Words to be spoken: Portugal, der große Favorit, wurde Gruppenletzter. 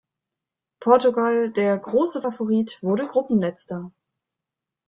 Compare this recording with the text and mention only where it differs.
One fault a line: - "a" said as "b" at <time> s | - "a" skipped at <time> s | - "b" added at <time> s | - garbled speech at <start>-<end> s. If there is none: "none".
none